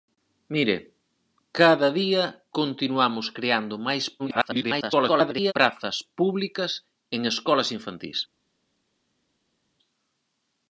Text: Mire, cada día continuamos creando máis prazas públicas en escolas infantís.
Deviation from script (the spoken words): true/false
true